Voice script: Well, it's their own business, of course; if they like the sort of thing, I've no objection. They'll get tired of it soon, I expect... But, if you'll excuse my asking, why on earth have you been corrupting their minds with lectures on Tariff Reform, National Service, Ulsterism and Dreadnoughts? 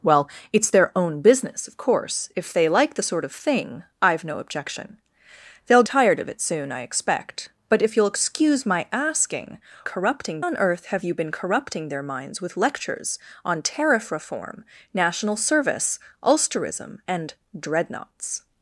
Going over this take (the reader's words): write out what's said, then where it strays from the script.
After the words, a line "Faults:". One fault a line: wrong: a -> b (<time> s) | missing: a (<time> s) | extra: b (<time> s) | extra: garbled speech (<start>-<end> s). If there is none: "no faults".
Well, it's their own business, of course; if they like the sort of thing, I've no objection. They'll tired of it soon, I expect... But, if you'll excuse my asking, corrupting on earth have you been corrupting their minds with lectures on Tariff Reform, National Service, Ulsterism and Dreadnoughts?
Faults:
missing: get (5.8 s)
wrong: why -> corrupting (9.8 s)